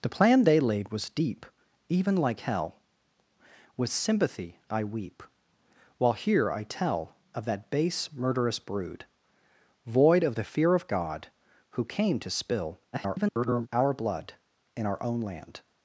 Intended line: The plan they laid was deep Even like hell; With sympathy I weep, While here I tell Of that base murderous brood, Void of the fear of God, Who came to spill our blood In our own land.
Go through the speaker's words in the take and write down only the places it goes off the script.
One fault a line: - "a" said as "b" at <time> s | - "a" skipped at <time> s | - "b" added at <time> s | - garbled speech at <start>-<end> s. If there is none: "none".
- garbled speech at 12.9-13.7 s